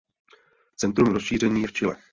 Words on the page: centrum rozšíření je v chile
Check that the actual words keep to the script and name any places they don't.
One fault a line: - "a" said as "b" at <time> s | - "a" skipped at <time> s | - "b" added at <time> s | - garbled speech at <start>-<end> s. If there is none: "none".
none